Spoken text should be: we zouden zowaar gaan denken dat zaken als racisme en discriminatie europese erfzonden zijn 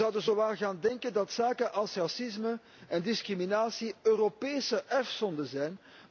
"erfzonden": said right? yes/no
yes